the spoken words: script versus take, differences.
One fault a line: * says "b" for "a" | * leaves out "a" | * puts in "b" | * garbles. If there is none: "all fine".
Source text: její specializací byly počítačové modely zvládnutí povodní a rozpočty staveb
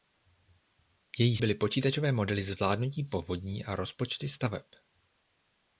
* leaves out "specializací"